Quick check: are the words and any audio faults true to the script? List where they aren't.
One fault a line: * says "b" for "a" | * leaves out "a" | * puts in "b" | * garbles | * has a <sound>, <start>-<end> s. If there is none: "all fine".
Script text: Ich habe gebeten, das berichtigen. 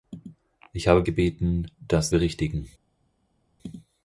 all fine